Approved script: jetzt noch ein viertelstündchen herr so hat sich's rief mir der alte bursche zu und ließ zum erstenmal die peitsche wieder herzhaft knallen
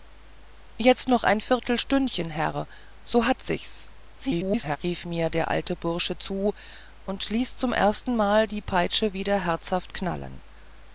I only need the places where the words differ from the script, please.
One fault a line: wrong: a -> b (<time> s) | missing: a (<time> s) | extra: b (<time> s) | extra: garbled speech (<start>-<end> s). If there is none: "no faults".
extra: garbled speech (4.2-4.8 s)